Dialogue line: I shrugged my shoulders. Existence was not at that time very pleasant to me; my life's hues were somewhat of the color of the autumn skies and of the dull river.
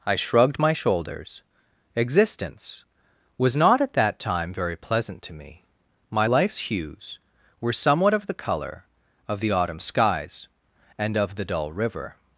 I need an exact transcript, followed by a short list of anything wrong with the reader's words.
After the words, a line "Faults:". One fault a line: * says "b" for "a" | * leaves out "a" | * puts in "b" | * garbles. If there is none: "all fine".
I shrugged my shoulders. Existence was not at that time very pleasant to me; my life's hues were somewhat of the color of the autumn skies and of the dull river.
Faults:
all fine